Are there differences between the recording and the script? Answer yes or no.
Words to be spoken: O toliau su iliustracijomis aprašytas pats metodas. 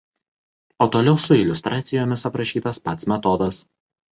no